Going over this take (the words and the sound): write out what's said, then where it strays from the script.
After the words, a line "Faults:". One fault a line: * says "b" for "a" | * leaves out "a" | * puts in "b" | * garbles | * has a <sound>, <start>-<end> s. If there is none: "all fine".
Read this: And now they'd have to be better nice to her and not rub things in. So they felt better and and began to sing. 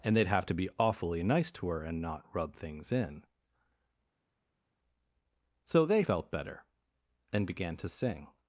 And they'd have to be awfully nice to her and not rub things in. So they felt better and began to sing.
Faults:
* leaves out "now"
* says "awfully" for "better"
* leaves out "and"